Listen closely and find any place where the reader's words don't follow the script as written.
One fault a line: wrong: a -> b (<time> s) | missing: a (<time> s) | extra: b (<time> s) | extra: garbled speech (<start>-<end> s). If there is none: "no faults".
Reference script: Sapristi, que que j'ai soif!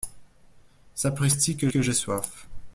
no faults